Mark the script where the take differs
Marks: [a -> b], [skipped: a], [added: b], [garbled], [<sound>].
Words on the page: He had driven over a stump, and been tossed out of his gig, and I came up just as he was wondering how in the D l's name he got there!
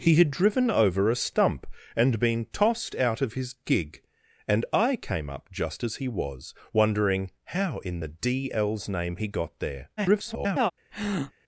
He had driven over a stump, and been tossed out of his gig, and I came up just as he was wondering how in the D l's name he got there! [garbled] [breath]